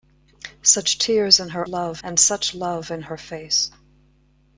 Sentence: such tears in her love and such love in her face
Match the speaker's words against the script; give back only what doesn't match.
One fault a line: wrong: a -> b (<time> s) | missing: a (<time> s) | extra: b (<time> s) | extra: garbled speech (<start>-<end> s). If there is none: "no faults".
no faults